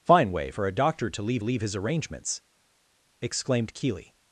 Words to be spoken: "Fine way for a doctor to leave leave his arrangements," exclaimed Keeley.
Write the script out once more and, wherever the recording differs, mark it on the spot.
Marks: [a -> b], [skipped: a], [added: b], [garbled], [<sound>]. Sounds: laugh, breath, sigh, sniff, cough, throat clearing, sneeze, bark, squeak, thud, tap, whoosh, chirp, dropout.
"Fine way for a doctor to leave leave his arrangements," exclaimed Keeley.